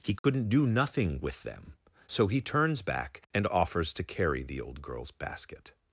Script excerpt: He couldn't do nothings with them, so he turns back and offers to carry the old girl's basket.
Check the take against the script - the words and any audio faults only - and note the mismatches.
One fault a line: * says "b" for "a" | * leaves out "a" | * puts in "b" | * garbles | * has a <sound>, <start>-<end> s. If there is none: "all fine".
* has a dropout, 0.2-0.2 s
* says "nothing" for "nothings"